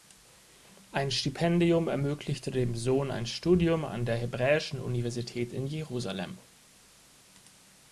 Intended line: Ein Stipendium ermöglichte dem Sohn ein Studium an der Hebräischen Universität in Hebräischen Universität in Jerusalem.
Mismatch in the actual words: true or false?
true